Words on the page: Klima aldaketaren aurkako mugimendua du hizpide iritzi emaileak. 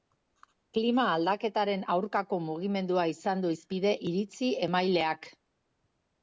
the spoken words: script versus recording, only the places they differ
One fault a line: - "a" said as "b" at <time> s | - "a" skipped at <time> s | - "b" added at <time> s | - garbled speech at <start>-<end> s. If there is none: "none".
- "izan" added at 3.1 s